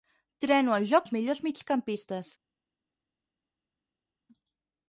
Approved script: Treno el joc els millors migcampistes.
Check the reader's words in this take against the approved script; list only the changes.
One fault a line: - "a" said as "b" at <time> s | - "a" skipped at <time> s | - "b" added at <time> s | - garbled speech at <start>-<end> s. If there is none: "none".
none